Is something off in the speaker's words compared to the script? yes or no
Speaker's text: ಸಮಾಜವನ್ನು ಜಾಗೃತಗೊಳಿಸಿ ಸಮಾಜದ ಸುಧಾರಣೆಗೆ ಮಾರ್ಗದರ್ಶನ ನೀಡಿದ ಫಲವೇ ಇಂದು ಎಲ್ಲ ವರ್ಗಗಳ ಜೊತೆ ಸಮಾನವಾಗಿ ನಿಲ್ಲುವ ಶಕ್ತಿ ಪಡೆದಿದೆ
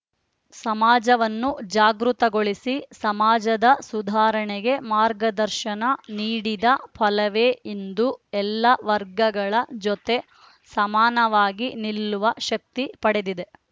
no